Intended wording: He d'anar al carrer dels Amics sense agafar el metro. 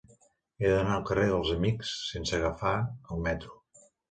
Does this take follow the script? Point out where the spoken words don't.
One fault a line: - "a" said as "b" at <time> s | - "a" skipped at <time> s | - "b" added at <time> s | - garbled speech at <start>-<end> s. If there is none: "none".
none